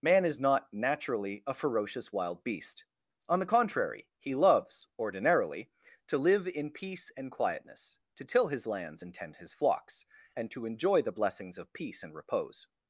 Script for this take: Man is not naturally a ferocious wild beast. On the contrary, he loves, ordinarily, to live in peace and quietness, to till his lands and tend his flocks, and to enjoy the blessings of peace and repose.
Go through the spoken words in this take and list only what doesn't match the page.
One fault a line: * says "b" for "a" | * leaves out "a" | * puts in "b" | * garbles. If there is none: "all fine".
all fine